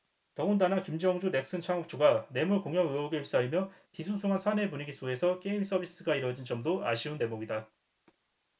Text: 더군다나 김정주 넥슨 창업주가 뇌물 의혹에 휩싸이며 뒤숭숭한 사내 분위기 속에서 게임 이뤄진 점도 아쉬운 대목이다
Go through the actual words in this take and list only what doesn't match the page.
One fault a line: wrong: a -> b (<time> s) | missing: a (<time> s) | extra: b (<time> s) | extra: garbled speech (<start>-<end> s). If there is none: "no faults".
extra: 공여 (2.6 s)
extra: 서비스가 (5.6 s)